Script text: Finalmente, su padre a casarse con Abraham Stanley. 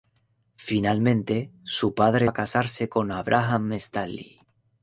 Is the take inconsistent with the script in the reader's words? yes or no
no